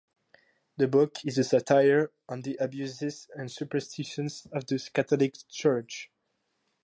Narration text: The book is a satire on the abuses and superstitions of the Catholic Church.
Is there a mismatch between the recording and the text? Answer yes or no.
no